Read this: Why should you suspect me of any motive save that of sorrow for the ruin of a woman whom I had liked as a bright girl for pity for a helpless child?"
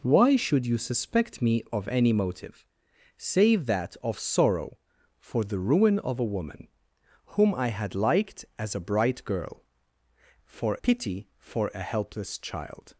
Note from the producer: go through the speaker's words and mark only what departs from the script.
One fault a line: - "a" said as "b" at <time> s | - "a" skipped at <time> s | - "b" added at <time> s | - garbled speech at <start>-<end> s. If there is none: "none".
none